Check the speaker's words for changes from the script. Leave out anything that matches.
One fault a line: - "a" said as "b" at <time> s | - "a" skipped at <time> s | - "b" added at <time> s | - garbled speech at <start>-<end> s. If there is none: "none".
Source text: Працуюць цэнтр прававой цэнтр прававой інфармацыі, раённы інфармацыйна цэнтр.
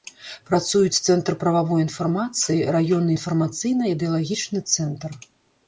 - "цэнтр прававой" skipped at 1.8 s
- "ідэалагічны" added at 4.0 s